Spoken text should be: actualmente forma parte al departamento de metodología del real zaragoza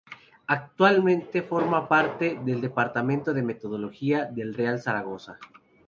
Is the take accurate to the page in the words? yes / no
no